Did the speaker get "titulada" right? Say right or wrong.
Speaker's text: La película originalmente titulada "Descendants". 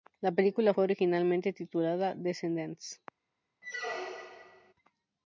right